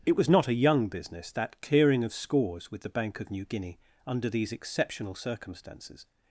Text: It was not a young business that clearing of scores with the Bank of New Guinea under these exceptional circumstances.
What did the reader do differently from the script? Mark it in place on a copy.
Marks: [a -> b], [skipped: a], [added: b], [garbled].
It was not a young business that clearing of scores with the Bank of New Guinea under these exceptional circumstances.